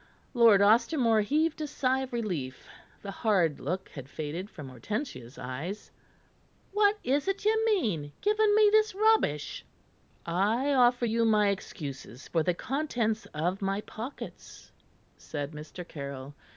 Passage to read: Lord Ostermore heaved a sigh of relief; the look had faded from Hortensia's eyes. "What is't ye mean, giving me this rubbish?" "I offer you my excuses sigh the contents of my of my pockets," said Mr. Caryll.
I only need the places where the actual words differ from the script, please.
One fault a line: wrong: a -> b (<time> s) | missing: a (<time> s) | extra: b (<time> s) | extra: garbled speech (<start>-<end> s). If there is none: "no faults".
extra: hard (3.1 s)
wrong: sigh -> for (12.3 s)
missing: of my (13.8 s)